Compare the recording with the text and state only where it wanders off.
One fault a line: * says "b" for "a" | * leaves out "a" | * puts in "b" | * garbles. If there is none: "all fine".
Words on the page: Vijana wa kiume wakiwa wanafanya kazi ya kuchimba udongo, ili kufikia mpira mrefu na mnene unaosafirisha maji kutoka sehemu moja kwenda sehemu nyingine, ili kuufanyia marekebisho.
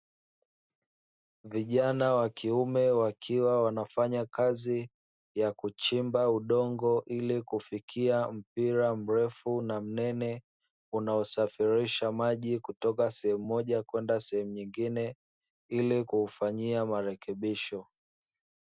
all fine